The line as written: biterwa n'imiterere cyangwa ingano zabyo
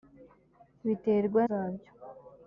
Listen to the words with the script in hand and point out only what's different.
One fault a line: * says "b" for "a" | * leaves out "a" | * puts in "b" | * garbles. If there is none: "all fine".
* leaves out "n'imiterere cyangwa ingano"